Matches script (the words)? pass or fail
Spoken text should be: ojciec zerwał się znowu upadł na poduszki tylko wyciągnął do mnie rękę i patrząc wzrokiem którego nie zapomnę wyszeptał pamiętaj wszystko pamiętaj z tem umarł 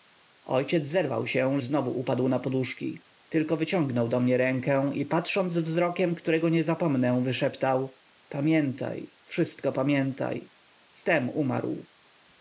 pass